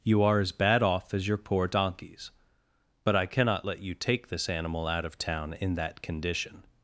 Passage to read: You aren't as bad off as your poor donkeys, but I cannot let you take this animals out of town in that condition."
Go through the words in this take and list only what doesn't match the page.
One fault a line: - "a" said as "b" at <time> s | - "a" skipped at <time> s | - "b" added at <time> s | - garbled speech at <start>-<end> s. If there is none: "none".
- "aren't" said as "are" at 0.2 s
- "animals" said as "animal" at 4.5 s